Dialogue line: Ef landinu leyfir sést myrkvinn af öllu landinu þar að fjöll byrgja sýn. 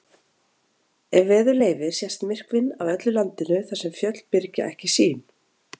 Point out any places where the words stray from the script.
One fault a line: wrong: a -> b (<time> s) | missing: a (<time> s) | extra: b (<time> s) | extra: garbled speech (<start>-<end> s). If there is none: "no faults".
wrong: landinu -> veður (1.3 s)
wrong: að -> sem (3.8 s)
extra: ekki (4.7 s)